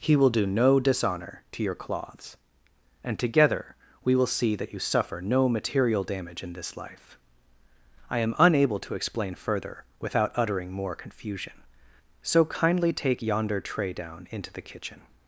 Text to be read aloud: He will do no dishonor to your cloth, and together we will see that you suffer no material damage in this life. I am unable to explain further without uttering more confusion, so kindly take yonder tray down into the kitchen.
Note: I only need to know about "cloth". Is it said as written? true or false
false